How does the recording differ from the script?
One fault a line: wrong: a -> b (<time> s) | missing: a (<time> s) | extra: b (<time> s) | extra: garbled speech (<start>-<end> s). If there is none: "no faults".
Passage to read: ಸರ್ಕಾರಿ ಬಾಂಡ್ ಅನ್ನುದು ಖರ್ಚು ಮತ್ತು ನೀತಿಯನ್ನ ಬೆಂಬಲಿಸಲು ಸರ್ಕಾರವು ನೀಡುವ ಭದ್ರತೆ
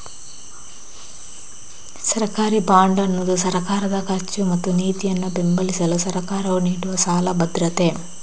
extra: ಸರ್ಕಾರದ (3.4 s)
extra: ಸಾಲ (7.0 s)